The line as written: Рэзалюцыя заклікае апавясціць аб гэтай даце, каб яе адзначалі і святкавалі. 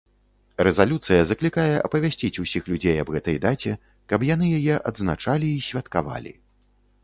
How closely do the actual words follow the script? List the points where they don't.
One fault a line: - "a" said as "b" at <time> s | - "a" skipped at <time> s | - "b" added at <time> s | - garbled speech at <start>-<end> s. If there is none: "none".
- "усіх людзей" added at 2.5 s
- "яны" added at 4.3 s